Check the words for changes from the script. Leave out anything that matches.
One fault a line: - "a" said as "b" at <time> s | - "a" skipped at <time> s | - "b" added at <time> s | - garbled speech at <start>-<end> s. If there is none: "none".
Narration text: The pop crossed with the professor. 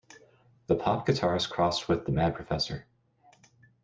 - "guitarist" added at 1.1 s
- "mad" added at 2.1 s